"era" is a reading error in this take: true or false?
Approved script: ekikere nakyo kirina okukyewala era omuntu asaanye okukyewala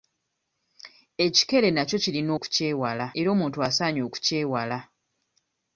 false